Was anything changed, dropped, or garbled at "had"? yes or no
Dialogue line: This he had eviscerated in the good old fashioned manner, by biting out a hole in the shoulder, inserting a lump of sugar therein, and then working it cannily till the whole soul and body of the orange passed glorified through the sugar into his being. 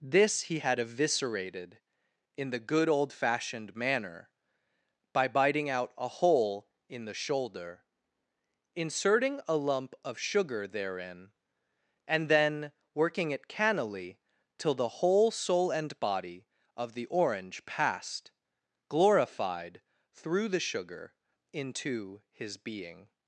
no